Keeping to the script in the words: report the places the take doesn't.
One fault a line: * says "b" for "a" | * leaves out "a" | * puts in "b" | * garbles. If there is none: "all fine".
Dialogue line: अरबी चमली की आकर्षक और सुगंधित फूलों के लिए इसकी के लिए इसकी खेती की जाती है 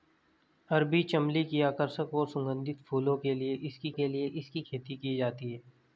all fine